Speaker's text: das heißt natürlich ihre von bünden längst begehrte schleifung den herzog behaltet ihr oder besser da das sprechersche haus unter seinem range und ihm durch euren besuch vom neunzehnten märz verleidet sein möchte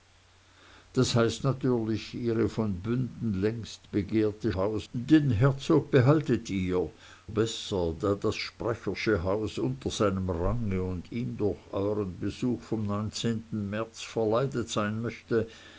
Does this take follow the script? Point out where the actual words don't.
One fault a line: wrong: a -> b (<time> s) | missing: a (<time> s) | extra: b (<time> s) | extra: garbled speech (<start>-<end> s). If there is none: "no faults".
wrong: schleifung -> haus (4.5 s)
missing: oder (6.9 s)